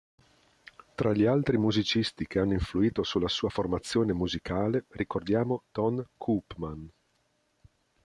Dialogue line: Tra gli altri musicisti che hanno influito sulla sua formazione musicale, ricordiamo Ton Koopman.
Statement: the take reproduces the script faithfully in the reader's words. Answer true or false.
true